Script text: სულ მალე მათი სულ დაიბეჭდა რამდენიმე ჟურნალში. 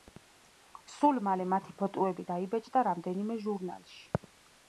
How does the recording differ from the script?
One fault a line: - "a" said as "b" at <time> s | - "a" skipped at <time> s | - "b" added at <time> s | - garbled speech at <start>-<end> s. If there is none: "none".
- "სულ" said as "ფოტოები" at 1.8 s